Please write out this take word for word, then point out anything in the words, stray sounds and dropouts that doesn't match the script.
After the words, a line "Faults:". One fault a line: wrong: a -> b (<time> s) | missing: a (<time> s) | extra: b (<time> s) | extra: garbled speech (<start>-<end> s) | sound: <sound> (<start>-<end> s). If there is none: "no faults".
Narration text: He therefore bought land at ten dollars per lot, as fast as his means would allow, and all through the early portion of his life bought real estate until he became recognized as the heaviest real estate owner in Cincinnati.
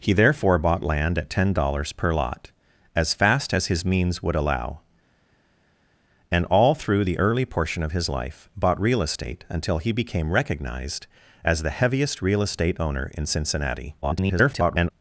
He therefore bought land at ten dollars per lot, as fast as his means would allow, and all through the early portion of his life bought real estate until he became recognized as the heaviest real estate owner in Cincinnati. [garbled]
Faults:
extra: garbled speech (14.0-14.9 s)